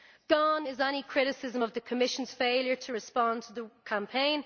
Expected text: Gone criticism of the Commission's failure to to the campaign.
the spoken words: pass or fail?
fail